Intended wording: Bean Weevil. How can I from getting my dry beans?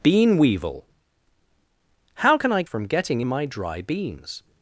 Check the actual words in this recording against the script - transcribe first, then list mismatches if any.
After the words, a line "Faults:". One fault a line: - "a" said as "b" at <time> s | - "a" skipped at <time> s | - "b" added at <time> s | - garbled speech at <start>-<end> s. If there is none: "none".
Bean Weevil. How can I from getting my dry beans?
Faults:
none